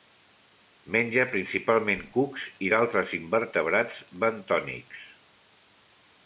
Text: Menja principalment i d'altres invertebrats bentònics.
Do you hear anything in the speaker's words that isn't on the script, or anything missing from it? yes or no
yes